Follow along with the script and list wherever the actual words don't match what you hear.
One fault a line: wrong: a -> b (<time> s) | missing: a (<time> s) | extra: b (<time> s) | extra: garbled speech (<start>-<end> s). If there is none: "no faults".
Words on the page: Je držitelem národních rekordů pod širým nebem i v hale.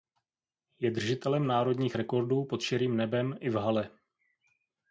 no faults